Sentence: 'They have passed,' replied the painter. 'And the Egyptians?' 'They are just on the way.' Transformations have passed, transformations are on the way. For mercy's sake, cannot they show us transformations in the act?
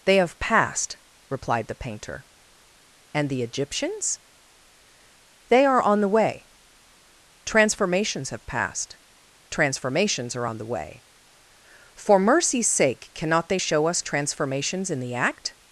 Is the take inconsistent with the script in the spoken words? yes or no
yes